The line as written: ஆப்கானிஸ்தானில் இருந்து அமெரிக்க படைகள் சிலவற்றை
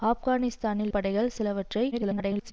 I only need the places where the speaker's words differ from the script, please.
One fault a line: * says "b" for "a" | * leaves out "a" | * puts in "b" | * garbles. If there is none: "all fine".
* leaves out "இருந்து அமெரிக்க"
* garbles